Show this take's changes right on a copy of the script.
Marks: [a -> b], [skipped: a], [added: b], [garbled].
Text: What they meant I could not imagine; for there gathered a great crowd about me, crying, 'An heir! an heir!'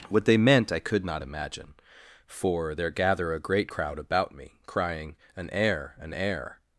What they meant I could not imagine; for there [gathered -> gather] a great crowd about me, crying, 'An heir! an heir!'